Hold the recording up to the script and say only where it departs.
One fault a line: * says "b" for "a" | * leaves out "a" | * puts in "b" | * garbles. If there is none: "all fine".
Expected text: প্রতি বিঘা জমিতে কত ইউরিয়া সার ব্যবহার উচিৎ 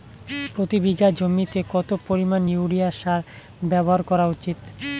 * puts in "পরিমাণ"
* puts in "করা"